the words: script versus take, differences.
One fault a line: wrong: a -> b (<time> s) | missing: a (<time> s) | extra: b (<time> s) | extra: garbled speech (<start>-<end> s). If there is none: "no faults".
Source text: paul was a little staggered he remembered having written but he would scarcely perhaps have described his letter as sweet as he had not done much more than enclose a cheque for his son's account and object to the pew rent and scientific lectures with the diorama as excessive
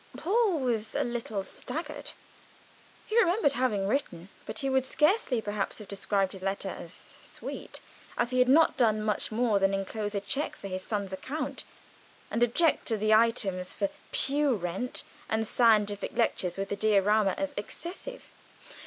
extra: items for (13.1 s)